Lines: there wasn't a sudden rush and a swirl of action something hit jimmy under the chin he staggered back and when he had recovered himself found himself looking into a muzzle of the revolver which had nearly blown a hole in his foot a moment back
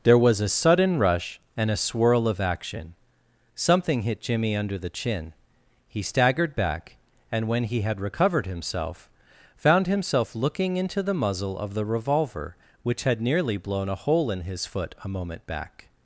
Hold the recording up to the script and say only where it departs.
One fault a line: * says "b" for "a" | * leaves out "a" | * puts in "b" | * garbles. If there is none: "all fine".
* says "was" for "wasn't"
* says "the" for "a"